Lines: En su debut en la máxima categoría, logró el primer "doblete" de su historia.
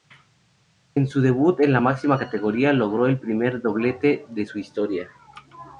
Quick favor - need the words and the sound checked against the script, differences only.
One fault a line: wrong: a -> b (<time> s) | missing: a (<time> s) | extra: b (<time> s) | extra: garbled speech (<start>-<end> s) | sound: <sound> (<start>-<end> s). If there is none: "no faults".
no faults